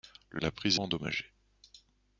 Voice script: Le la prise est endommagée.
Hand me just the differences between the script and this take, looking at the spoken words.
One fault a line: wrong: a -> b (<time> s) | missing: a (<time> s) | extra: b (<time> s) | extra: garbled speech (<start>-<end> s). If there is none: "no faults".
no faults